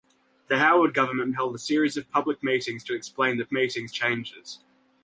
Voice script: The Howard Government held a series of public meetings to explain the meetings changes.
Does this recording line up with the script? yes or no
yes